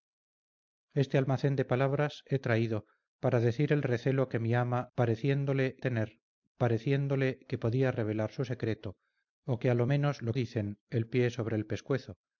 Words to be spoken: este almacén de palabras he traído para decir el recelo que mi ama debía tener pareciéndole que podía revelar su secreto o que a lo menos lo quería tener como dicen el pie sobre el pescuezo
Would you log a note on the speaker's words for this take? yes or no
yes